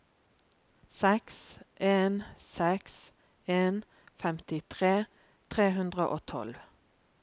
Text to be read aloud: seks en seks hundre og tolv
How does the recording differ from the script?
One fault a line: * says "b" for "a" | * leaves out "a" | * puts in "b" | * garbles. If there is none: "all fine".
* puts in "en femtitre tre"